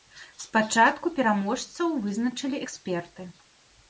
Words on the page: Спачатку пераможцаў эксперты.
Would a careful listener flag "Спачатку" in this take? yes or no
no